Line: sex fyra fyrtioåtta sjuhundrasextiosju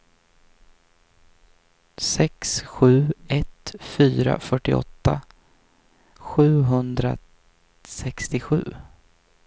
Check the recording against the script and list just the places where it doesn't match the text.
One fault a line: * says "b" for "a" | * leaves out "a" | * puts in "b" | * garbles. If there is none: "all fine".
* puts in "sju ett"